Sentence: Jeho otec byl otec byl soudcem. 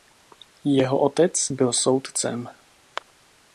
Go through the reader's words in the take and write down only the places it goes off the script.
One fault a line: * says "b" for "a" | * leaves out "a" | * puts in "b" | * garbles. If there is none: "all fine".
* leaves out "otec byl"